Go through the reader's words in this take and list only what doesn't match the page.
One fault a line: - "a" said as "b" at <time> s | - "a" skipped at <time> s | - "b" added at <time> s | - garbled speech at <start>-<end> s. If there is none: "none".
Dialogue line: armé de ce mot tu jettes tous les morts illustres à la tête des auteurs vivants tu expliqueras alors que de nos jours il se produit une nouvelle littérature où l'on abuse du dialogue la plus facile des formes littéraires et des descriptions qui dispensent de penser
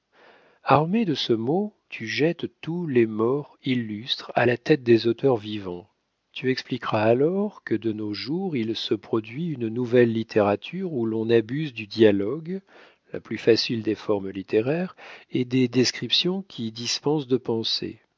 none